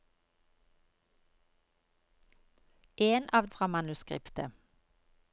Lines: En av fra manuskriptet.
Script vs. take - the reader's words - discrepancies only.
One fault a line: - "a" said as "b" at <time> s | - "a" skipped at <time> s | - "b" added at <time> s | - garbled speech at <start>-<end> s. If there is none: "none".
none